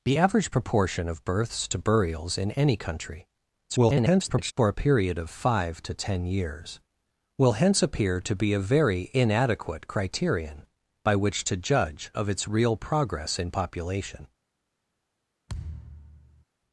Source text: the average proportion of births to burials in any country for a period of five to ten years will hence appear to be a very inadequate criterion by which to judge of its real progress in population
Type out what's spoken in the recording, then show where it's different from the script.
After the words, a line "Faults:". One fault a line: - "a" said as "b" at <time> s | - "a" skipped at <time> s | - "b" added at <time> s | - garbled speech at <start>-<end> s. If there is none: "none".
the average proportion of births to burials in any country [garbled] for a period of five to ten years will hence appear to be a very inadequate criterion by which to judge of its real progress in population
Faults:
- garbled speech at 3.7-4.5 s